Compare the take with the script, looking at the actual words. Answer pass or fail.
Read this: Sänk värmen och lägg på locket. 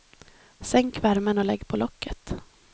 pass